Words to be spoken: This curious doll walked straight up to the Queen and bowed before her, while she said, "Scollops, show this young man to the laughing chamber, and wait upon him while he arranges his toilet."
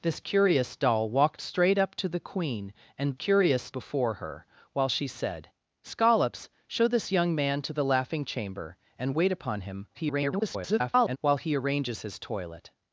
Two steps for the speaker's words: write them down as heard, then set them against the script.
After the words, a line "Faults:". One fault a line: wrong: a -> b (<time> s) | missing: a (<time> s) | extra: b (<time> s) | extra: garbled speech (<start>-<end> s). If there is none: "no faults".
This curious doll walked straight up to the Queen and curious before her, while she said, "Scollops, show this young man to the laughing chamber, and wait upon him [garbled] while he arranges his toilet."
Faults:
wrong: bowed -> curious (3.1 s)
extra: garbled speech (9.9-11.2 s)